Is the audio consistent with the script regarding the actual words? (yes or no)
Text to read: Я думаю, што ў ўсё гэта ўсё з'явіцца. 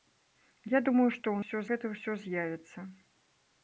yes